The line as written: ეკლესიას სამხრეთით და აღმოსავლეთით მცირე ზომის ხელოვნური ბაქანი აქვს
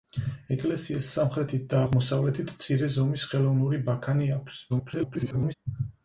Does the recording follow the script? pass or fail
fail